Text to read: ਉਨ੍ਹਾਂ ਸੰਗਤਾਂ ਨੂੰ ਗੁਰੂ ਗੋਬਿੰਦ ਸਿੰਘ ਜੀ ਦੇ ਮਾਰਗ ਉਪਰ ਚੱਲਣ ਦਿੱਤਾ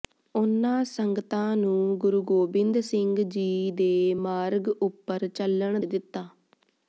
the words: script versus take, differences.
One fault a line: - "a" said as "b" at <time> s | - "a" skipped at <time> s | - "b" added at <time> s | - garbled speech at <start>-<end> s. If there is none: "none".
none